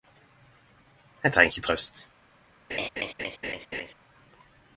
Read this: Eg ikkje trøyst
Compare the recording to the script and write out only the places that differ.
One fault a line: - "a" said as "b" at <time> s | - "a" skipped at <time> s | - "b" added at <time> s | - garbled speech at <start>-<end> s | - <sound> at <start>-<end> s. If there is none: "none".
- "treng" added at 1.4 s
- laugh at 2.7-3.9 s